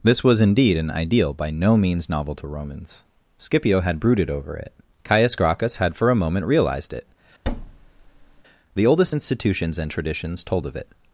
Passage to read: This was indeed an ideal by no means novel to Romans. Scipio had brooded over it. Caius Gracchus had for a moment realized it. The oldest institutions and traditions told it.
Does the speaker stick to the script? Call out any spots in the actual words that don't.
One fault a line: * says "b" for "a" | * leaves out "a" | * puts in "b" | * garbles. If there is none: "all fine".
* puts in "of"